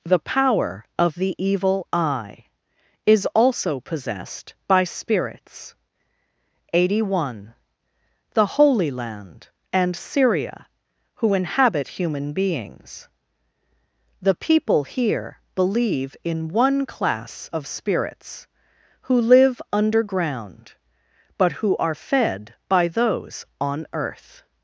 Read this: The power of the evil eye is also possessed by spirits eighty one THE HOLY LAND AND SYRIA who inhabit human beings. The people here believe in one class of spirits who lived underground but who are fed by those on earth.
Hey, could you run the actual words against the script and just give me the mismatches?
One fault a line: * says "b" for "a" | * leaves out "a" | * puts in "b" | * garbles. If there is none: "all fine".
* says "live" for "lived"